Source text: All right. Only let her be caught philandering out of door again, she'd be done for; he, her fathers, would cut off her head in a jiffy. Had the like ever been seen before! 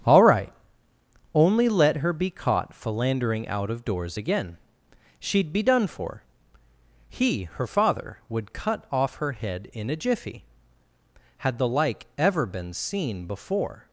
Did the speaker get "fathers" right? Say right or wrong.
wrong